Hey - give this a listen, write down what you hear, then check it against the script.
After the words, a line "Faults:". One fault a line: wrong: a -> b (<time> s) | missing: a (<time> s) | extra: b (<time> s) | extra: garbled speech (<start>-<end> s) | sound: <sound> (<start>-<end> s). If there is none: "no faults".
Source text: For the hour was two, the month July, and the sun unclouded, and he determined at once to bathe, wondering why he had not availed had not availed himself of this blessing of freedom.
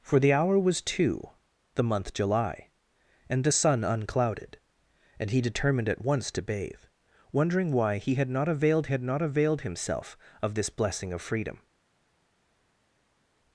For the hour was two, the month July, and the sun unclouded, and he determined at once to bathe, wondering why he had not availed had not availed himself of this blessing of freedom.
Faults:
no faults